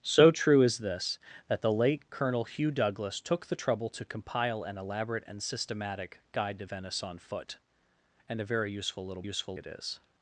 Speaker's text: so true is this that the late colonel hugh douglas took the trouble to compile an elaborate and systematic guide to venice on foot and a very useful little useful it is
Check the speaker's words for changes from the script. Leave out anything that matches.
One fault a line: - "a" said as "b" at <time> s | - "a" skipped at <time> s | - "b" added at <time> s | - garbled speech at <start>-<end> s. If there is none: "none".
none